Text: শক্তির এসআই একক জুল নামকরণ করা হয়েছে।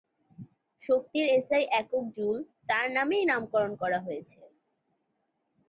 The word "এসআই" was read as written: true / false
true